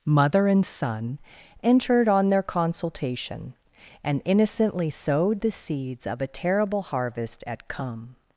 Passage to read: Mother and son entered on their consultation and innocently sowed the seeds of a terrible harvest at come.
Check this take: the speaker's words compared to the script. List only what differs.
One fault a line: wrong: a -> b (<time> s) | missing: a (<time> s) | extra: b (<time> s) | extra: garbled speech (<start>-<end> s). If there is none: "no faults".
no faults